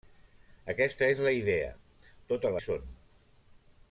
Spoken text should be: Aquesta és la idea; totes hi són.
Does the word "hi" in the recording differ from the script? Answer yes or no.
no